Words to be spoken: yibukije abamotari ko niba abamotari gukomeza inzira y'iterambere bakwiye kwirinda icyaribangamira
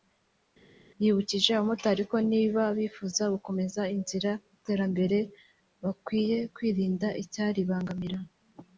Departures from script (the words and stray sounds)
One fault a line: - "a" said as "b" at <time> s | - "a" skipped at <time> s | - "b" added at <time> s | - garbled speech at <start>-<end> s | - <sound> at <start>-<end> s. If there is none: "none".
- "abamotari" said as "bifuza" at 2.8 s